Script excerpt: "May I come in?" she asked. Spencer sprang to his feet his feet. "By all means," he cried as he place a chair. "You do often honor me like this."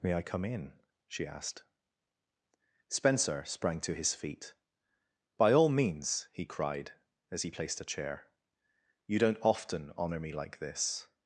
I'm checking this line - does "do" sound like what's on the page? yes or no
no